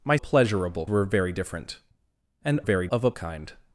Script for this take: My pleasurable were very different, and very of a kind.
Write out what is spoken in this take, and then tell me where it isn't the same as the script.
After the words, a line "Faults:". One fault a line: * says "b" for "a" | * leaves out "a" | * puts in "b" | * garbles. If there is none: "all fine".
My pleasurable were very different, and very of a kind.
Faults:
all fine